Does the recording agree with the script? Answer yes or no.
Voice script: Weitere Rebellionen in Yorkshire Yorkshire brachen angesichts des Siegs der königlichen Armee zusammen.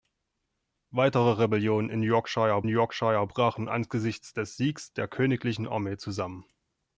yes